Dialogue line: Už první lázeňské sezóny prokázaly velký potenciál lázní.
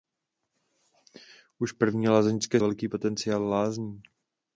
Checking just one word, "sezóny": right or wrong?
wrong